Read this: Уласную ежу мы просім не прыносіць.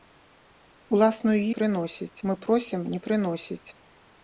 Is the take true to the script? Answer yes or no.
no